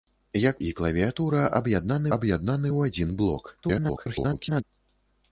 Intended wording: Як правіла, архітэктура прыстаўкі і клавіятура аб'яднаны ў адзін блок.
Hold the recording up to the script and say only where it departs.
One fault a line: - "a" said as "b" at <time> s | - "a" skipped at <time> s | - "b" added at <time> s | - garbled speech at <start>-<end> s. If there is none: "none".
- "правіла архітэктура прыстаўкі" skipped at 0.6 s
- "аб'яднаны" added at 2.2 s
- garbled speech at 3.6-4.6 s